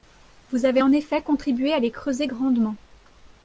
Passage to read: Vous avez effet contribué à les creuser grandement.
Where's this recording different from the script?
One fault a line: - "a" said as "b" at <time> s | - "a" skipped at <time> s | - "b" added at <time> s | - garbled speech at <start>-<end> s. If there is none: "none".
- "en" added at 0.8 s